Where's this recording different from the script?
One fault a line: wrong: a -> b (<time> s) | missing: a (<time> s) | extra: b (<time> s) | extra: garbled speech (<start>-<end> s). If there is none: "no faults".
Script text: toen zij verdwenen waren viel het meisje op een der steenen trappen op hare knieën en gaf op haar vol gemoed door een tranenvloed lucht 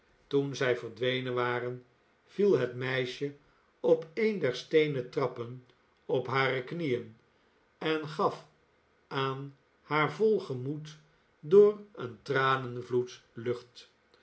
wrong: op -> aan (9.1 s)